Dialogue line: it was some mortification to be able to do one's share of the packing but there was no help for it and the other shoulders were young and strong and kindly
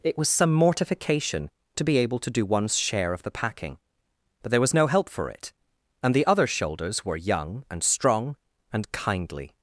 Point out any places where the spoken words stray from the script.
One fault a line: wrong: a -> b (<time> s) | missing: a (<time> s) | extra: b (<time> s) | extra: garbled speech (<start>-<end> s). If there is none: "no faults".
no faults